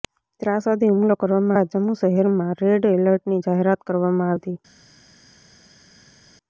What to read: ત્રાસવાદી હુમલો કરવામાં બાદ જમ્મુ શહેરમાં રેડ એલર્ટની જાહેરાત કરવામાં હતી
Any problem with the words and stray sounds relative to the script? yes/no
no